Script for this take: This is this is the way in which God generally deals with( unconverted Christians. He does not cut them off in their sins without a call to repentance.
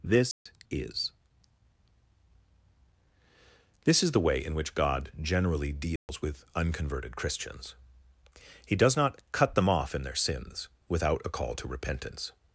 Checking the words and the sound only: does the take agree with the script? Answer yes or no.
no